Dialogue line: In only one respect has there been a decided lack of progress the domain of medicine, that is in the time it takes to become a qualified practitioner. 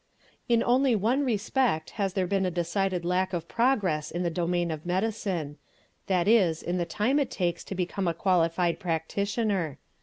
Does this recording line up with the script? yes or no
no